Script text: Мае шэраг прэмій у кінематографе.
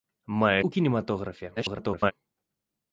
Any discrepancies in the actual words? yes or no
yes